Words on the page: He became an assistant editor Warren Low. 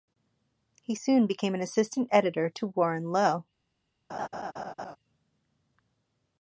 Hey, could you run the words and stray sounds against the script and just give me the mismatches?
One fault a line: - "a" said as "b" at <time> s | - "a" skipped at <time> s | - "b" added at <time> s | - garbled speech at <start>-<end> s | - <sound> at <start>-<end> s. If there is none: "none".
- "soon" added at 0.9 s
- "to" added at 2.5 s
- laugh at 4.1-5.0 s